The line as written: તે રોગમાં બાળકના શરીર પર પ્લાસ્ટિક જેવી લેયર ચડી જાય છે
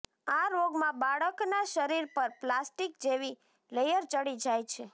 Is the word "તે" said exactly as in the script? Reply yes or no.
no